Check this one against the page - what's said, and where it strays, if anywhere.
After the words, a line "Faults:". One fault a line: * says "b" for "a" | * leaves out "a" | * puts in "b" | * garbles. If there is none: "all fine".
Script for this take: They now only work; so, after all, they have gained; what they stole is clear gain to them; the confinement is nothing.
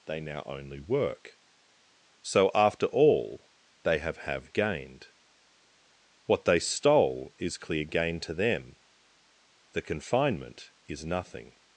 They now only work; so, after all, they have have gained; what they stole is clear gain to them; the confinement is nothing.
Faults:
* puts in "have"